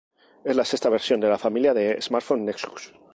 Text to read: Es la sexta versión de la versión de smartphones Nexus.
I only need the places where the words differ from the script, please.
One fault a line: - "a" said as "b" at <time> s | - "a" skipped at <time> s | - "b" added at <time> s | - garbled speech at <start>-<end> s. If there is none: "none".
- "versión" said as "familia" at 1.4 s